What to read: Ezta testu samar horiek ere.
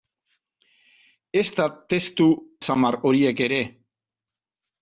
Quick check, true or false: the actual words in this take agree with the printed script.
true